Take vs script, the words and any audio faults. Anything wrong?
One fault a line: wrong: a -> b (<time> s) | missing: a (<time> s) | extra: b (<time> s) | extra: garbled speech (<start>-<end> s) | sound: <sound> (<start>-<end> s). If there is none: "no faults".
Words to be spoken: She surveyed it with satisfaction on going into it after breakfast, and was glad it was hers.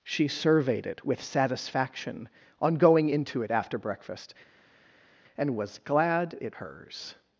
missing: was (6.6 s)